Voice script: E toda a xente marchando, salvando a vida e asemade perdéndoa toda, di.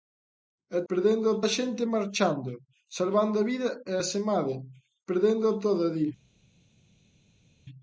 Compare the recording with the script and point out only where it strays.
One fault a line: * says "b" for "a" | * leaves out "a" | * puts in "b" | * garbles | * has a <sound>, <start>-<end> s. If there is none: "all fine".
* says "perdéndoa" for "toda"